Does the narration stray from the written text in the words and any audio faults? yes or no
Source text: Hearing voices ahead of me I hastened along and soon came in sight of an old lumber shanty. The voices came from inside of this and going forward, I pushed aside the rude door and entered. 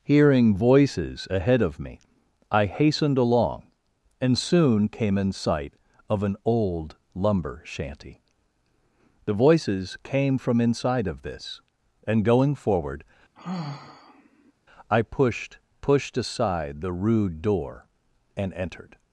yes